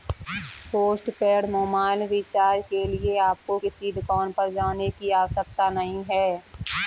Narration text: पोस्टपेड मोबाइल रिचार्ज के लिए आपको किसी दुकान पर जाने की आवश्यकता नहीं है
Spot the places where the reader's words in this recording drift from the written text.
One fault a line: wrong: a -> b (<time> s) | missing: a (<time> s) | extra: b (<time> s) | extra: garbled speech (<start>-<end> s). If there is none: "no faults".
no faults